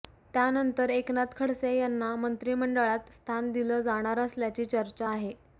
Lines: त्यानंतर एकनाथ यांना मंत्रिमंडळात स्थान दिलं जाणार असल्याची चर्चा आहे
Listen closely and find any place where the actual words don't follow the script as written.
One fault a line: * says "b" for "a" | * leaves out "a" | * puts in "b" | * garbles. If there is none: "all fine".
* puts in "खडसे"